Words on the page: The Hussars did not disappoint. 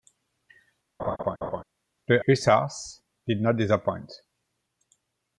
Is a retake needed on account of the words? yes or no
no